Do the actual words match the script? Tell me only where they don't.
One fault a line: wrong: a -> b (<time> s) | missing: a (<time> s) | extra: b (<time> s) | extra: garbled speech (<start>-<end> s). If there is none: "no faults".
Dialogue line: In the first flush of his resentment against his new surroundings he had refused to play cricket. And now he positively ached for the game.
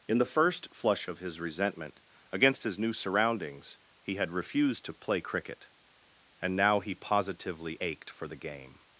no faults